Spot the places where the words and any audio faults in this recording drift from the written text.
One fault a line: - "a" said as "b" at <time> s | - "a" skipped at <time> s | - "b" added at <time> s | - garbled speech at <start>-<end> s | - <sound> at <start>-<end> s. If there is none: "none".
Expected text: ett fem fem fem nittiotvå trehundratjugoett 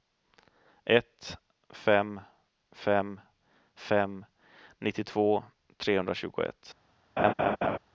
- laugh at 7.2-7.8 s